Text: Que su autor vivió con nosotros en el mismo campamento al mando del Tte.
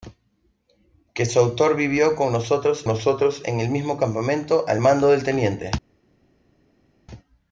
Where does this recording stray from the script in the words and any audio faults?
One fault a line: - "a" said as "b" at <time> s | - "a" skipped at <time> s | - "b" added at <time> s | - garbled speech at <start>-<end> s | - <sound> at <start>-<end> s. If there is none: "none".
- "nosotros" added at 2.9 s